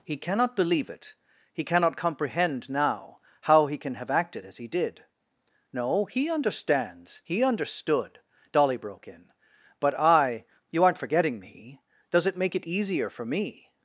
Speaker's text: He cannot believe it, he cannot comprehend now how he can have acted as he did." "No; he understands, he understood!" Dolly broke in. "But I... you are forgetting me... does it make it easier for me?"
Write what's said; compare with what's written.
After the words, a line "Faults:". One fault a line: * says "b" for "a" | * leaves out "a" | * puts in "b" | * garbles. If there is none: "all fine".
He cannot believe it, he cannot comprehend now how he can have acted as he did." "No; he understands, he understood!" Dolly broke in. "But I... you aren't forgetting me... does it make it easier for me?"
Faults:
* says "aren't" for "are"